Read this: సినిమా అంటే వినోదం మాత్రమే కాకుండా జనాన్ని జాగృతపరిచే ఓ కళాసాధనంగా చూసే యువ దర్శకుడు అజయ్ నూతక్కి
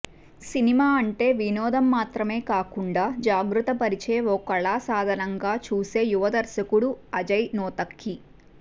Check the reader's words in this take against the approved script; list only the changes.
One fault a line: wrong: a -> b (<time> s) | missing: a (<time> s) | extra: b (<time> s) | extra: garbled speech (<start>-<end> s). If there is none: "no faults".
missing: జనాన్ని (3.0 s)